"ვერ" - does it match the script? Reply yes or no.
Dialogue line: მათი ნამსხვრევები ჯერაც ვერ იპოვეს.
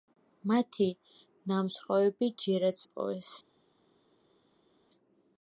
no